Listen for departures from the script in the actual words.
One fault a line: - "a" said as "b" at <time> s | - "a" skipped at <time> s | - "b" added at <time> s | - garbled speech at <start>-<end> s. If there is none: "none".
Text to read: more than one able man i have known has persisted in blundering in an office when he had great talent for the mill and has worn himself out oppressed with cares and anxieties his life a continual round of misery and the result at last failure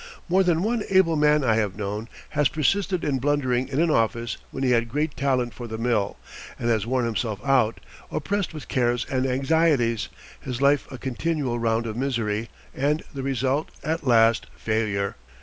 none